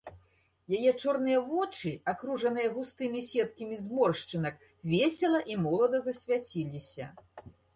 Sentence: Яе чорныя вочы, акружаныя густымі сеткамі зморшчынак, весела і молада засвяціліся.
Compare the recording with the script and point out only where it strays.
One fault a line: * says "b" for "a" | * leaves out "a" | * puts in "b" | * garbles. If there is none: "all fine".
all fine